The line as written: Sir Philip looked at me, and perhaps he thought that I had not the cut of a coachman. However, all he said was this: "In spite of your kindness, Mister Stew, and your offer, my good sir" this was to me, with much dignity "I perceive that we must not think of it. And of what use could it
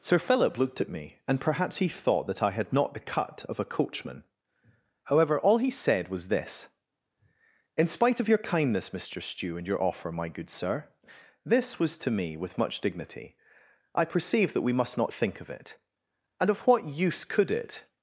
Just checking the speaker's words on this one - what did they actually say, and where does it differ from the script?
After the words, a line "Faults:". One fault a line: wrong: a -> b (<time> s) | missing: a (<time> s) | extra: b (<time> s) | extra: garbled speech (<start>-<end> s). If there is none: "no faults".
Sir Philip looked at me, and perhaps he thought that I had not the cut of a coachman. However, all he said was this: "In spite of your kindness, Mister Stew, and your offer, my good sir" this was to me, with much dignity "I perceive that we must not think of it. And of what use could it
Faults:
no faults